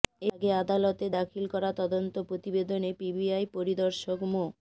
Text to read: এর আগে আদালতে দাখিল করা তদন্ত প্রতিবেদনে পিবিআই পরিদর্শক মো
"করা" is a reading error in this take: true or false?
false